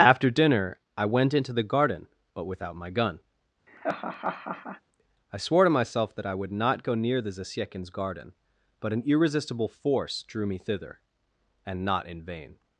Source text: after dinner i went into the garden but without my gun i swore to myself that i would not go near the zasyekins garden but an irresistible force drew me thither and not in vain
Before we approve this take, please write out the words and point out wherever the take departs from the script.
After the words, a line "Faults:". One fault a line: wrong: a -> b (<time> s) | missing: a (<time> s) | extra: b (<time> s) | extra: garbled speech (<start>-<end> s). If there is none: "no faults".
after dinner i went into the garden but without my gun i swore to myself that i would not go near the zasyekins garden but an irresistible force drew me thither and not in vain
Faults:
no faults